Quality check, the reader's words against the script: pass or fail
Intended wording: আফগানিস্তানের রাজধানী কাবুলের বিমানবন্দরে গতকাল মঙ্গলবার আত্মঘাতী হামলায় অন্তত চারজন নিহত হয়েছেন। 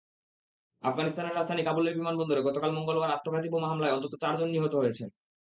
fail